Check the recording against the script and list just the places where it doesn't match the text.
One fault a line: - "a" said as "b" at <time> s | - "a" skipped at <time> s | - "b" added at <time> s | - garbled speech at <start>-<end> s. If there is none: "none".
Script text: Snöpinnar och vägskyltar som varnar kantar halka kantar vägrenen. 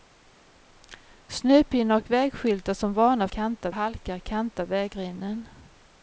none